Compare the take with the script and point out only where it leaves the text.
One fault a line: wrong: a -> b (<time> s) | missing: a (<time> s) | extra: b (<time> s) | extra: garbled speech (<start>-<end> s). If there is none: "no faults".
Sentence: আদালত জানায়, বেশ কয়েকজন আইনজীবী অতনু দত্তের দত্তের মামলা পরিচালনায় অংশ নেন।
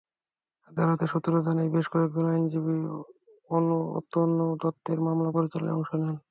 extra: সূত্র (1.1 s)
missing: দত্তের (5.0 s)